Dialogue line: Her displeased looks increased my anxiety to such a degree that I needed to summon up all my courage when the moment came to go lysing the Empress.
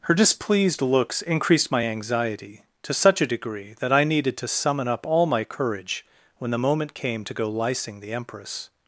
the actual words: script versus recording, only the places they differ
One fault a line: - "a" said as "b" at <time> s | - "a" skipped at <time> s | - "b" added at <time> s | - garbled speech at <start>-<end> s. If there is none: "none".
none